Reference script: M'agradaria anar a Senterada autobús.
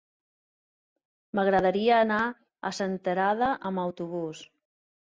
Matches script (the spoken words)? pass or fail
fail